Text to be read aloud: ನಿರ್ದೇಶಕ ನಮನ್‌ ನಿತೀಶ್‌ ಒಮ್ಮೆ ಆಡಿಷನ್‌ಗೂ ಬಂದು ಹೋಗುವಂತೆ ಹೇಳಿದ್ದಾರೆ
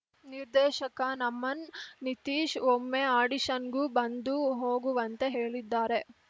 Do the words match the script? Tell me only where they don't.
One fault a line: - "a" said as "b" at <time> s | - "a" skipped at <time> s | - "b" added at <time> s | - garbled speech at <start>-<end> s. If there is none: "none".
none